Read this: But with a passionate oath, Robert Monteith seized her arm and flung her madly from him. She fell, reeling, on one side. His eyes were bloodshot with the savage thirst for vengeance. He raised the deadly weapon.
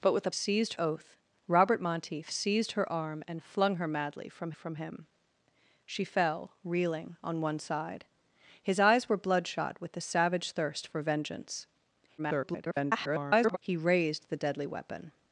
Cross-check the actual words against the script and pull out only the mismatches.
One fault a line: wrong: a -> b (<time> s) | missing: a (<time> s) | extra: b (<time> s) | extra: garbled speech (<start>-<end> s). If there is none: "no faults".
wrong: passionate -> seized (0.3 s)
extra: from (4.5 s)
extra: garbled speech (12.2-13.6 s)